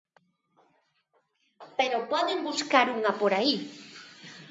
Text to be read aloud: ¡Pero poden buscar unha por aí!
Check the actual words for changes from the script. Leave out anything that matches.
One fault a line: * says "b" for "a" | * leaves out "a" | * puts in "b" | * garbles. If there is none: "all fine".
all fine